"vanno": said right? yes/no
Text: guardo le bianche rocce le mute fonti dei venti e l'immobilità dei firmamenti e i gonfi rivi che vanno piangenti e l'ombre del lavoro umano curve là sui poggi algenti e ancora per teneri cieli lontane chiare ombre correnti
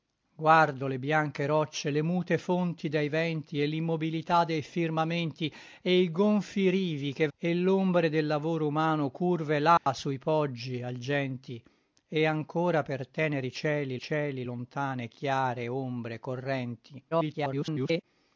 no